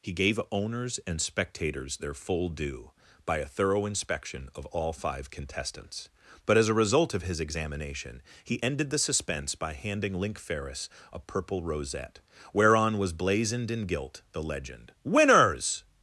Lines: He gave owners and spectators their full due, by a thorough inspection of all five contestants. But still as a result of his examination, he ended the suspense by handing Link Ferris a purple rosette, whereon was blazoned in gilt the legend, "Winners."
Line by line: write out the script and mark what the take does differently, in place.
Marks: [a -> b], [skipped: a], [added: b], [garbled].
He gave owners and spectators their full due, by a thorough inspection of all five contestants. But [skipped: still] as a result of his examination, he ended the suspense by handing Link Ferris a purple rosette, whereon was blazoned in gilt the legend, "Winners."